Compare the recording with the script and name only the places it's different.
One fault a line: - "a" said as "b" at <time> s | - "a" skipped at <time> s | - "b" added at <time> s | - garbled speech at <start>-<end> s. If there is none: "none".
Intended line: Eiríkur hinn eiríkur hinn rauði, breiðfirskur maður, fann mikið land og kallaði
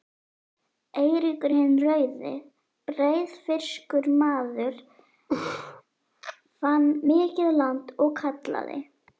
- "eiríkur hinn" skipped at 1.7 s